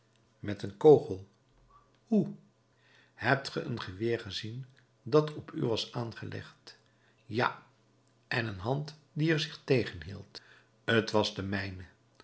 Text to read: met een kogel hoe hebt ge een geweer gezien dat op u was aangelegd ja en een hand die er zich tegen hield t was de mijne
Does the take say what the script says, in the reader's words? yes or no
yes